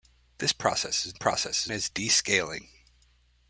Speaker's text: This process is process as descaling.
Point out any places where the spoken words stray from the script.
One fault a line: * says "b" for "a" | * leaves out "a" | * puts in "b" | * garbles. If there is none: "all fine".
all fine